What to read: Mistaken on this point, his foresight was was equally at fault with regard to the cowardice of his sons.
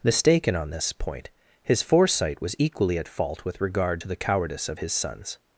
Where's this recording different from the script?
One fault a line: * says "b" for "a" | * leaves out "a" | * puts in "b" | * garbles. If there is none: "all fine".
* leaves out "was"